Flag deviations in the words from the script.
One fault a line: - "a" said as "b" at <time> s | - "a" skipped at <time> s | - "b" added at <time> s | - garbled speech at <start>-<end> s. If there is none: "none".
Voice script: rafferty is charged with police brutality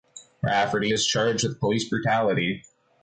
none